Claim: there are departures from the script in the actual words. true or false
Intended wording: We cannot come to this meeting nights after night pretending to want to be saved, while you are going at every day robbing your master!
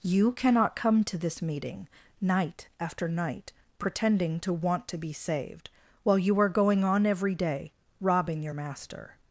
true